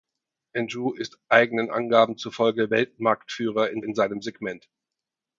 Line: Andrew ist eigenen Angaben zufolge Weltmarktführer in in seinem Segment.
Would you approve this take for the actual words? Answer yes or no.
yes